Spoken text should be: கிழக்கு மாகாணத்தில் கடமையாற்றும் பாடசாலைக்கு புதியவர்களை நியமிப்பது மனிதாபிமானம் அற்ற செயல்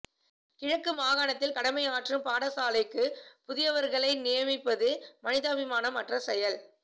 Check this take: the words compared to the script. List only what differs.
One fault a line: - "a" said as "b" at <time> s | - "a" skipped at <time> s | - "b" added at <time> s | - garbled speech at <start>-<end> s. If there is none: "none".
none